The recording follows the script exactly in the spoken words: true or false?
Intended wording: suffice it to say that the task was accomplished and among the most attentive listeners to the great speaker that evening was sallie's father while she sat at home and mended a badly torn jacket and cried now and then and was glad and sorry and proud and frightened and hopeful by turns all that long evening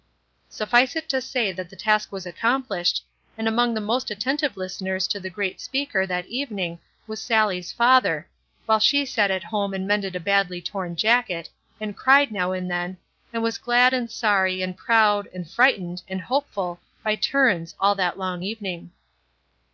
true